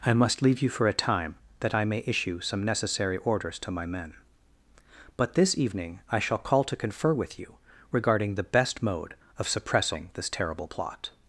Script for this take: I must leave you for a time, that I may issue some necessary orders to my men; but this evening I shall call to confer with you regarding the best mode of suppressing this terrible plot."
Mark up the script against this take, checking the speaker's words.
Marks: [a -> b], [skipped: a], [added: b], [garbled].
I must leave you for a time, that I may issue some necessary orders to my men; but this evening I shall call to confer with you regarding the best mode of suppressing this terrible plot."